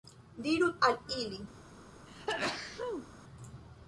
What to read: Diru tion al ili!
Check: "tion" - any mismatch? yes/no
yes